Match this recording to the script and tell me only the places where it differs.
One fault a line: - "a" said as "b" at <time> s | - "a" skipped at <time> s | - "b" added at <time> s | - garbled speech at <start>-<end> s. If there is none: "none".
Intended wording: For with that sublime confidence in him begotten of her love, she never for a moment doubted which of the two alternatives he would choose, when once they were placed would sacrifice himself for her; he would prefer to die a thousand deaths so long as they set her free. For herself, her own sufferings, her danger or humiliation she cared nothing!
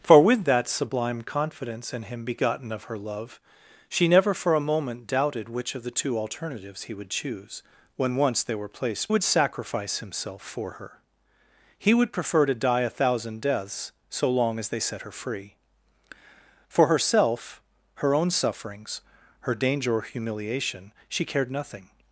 none